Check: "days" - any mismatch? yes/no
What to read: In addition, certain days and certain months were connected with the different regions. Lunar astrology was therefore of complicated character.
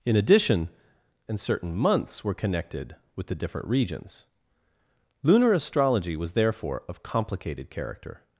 yes